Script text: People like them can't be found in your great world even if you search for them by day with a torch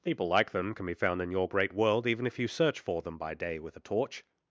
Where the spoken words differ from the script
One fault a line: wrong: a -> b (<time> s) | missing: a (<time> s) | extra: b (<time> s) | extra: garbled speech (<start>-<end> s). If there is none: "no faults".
wrong: can't -> can (0.7 s)